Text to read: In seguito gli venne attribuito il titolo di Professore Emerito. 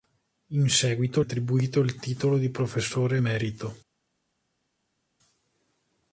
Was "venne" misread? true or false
true